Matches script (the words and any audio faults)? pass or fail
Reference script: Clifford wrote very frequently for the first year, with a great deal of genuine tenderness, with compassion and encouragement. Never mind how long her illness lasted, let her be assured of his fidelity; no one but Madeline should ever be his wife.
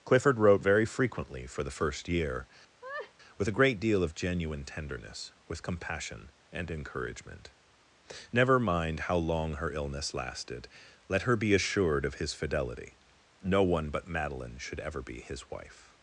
fail